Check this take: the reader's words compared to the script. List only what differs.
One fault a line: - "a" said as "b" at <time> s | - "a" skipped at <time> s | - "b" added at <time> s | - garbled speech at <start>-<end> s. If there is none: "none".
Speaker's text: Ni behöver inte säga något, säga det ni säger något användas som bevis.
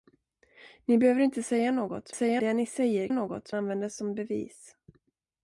none